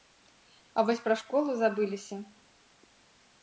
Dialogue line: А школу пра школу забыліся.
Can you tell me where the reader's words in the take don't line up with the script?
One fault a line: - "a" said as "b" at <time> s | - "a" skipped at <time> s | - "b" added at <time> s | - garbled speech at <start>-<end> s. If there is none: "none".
- "школу" said as "вось" at 0.9 s